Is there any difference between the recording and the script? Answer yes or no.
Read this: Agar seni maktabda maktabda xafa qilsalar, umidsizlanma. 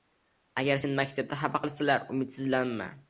yes